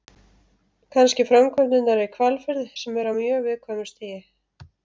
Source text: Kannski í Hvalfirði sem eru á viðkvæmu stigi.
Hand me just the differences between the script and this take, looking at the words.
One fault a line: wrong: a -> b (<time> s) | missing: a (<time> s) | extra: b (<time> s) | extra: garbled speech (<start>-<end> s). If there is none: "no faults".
extra: framkvæmdirnar (1.3 s)
extra: mjög (3.2 s)